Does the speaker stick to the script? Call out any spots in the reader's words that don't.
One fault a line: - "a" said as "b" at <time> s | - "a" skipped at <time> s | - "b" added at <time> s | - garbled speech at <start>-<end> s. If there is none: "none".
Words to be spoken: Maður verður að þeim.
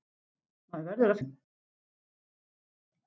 none